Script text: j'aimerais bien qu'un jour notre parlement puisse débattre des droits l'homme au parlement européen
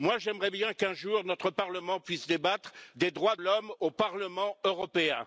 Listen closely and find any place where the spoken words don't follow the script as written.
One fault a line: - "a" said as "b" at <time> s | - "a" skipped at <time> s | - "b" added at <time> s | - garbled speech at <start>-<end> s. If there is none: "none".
none